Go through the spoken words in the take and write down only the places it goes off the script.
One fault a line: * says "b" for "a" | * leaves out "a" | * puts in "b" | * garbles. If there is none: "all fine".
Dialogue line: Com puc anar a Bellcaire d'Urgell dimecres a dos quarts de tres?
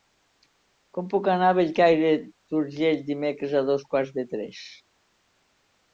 all fine